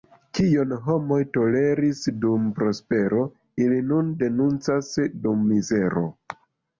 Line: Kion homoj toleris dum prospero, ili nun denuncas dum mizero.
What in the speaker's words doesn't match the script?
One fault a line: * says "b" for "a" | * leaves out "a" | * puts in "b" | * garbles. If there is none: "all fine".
all fine